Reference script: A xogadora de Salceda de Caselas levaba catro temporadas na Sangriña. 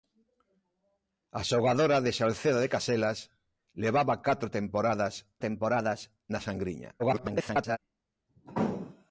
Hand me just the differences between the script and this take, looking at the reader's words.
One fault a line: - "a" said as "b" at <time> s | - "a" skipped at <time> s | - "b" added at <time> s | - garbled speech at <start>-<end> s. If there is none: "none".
- "temporadas" added at 5.5 s
- garbled speech at 7.0-7.8 s